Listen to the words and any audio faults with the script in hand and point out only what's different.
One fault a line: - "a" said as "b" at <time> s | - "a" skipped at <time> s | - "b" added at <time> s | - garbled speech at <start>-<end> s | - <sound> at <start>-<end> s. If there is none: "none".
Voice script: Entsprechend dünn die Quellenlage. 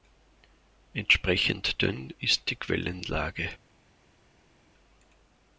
- "ist" added at 2.2 s